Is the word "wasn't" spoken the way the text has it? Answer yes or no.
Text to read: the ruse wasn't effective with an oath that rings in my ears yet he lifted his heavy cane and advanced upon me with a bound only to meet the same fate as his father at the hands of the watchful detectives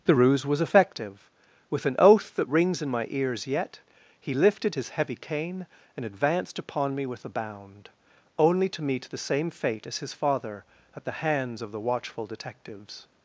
no